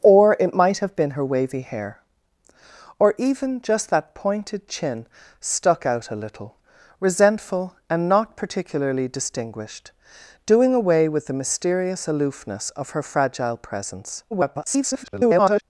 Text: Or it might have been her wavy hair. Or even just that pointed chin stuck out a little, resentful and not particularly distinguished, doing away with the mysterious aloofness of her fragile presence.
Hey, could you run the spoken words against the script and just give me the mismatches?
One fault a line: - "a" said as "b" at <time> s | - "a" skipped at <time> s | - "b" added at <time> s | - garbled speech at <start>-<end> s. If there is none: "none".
- garbled speech at 14.3-15.6 s